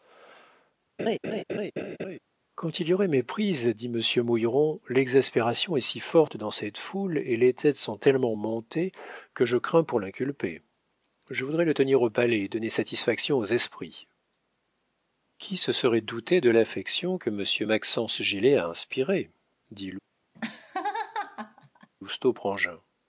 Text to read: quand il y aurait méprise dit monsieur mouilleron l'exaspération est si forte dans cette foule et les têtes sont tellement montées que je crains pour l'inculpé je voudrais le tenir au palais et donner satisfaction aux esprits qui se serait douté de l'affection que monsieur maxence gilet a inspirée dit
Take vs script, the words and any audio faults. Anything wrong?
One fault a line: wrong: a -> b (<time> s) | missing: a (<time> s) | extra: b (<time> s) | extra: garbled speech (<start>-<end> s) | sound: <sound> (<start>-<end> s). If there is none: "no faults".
sound: laugh (1.0-2.2 s)
sound: laugh (20.3-21.9 s)